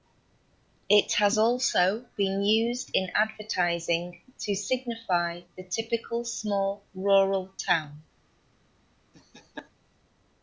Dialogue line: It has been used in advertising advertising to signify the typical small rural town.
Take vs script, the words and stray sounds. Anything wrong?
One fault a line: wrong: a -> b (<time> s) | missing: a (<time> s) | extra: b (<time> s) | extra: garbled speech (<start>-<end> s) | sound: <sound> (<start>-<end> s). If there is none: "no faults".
extra: also (1.4 s)
missing: advertising (4.2 s)
sound: laugh (9.1-9.7 s)